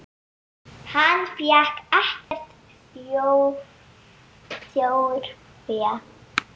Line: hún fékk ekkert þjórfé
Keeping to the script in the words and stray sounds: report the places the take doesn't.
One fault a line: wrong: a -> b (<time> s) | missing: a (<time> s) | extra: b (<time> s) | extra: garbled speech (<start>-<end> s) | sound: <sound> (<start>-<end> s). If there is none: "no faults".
wrong: hún -> hann (0.9 s)
sound: dropout (2.2-2.3 s)